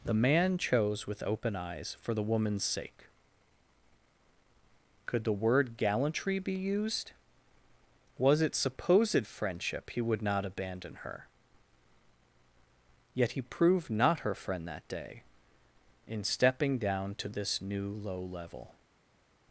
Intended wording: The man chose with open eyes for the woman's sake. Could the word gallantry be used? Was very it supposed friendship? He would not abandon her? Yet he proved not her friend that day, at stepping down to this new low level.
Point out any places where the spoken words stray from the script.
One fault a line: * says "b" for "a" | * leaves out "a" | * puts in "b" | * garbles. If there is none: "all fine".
* leaves out "very"
* says "in" for "at"